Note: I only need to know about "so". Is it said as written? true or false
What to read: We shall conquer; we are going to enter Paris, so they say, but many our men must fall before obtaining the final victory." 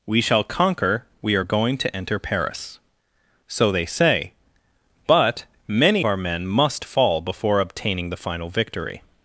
true